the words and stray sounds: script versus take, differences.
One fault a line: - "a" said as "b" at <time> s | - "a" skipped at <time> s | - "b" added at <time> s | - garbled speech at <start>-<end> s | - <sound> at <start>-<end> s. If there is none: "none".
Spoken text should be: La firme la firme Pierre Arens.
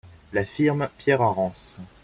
- "la firme" skipped at 0.9 s